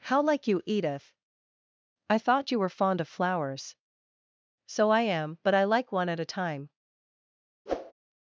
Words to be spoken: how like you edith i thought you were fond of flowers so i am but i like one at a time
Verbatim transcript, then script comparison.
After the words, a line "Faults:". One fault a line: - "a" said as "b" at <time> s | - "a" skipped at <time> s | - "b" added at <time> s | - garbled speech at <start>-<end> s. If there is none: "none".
how like you edith i thought you were fond of flowers so i am but i like one at a time
Faults:
none